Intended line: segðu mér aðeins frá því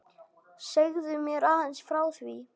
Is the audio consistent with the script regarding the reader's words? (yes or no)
yes